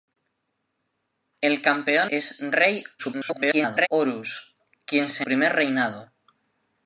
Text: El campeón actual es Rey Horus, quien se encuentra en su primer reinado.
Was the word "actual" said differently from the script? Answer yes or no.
yes